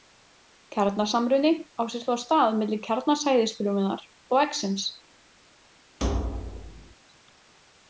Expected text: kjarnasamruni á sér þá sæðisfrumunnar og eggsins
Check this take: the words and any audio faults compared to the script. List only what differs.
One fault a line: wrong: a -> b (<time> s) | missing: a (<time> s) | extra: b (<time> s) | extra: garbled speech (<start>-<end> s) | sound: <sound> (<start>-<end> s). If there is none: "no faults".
extra: stað milli kjarna (2.2 s)
sound: thud (6.0-6.9 s)